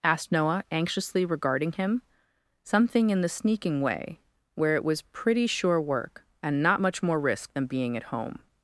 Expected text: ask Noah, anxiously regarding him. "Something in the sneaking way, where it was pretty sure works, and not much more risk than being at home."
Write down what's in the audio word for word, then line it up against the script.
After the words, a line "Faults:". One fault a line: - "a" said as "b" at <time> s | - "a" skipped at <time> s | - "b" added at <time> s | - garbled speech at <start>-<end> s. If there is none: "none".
asked Noah, anxiously regarding him. "Something in the sneaking way, where it was pretty sure work, and not much more risk than being at home."
Faults:
- "ask" said as "asked" at 0.0 s
- "works" said as "work" at 5.8 s